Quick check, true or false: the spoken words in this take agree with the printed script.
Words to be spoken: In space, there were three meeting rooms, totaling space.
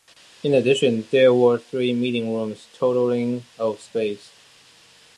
false